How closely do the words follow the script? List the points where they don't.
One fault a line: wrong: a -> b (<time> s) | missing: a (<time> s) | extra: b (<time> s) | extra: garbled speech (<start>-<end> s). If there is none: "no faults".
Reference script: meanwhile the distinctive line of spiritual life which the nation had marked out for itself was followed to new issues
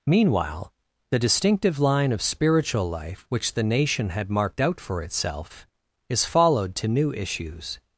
wrong: was -> is (6.1 s)